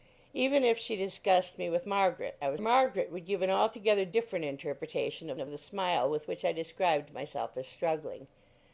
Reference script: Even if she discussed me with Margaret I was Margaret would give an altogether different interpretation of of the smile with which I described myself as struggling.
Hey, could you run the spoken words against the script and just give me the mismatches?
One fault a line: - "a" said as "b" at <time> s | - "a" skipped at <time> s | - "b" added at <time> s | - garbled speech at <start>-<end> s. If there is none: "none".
none